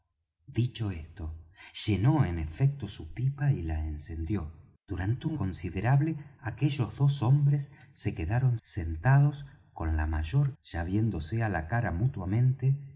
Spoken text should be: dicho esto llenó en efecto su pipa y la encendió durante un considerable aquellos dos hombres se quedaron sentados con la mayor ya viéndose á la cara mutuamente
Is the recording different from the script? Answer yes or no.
no